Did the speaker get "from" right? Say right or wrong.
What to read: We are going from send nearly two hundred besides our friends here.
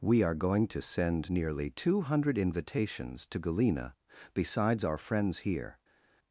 wrong